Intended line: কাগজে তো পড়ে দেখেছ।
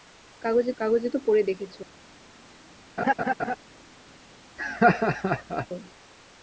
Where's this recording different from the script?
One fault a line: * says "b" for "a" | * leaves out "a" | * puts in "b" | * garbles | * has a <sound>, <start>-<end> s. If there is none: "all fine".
* puts in "কাগজে"
* has a laugh, 3.0-3.6 s
* has a laugh, 4.6-5.7 s